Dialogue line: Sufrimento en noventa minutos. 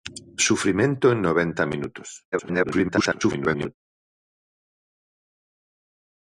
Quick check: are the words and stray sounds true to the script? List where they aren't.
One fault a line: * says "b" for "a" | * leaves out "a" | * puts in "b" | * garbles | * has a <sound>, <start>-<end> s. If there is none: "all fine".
* garbles